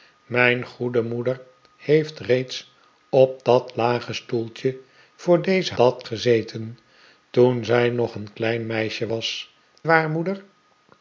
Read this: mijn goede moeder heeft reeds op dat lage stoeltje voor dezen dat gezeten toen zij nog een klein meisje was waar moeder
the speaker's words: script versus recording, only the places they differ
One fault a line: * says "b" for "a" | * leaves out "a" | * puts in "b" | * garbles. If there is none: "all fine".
all fine